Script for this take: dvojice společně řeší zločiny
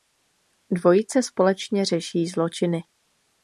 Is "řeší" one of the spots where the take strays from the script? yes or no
no